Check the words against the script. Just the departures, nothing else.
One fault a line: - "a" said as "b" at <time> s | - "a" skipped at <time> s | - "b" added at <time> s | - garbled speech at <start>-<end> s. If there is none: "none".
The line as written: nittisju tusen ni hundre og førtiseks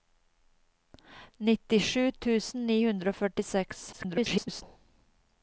- garbled speech at 3.9-4.6 s